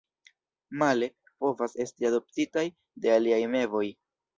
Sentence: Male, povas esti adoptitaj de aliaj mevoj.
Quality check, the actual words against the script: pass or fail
pass